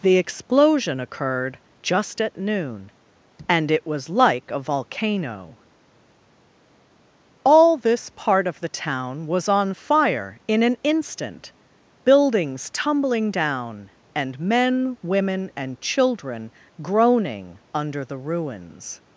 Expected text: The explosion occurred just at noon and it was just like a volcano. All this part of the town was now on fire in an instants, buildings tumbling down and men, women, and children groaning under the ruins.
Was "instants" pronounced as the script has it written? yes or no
no